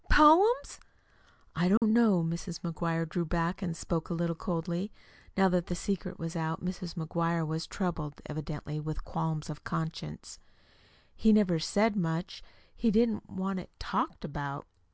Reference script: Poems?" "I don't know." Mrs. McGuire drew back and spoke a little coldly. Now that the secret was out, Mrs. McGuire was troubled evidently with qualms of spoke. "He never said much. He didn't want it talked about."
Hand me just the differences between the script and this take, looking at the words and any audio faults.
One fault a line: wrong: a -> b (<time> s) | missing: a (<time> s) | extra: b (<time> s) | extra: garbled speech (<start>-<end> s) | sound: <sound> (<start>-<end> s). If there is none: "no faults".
sound: dropout (1.8-1.8 s)
wrong: spoke -> conscience (9.7 s)